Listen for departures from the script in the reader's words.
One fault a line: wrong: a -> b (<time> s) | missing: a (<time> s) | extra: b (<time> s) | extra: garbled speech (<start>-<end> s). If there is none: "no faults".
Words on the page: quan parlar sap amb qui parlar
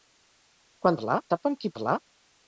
no faults